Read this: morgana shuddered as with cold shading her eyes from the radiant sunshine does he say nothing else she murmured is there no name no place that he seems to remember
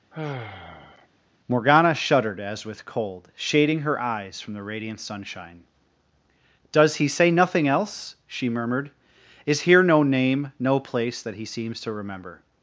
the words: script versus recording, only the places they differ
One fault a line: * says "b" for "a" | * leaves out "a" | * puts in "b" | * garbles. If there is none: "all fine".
* says "here" for "there"